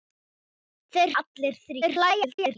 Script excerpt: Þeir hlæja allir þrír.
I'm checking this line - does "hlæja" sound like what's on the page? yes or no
no